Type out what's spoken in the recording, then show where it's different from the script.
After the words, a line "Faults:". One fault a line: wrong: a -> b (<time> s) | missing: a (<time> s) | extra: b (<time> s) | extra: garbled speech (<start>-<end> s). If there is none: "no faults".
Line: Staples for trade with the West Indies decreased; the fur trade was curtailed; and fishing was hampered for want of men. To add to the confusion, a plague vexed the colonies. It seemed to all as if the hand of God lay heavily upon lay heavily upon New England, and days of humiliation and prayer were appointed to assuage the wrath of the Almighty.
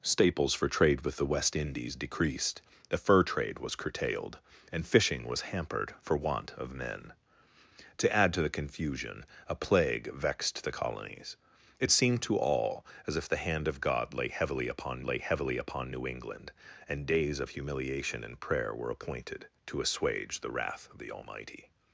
Staples for trade with the West Indies decreased; the fur trade was curtailed; and fishing was hampered for want of men. To add to the confusion, a plague vexed the colonies. It seemed to all as if the hand of God lay heavily upon lay heavily upon New England, and days of humiliation and prayer were appointed to assuage the wrath of the Almighty.
Faults:
no faults